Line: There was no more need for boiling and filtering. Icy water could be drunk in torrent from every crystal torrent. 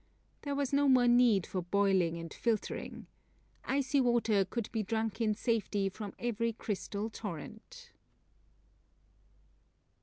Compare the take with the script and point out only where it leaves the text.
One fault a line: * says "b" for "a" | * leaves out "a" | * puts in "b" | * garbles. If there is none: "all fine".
* says "safety" for "torrent"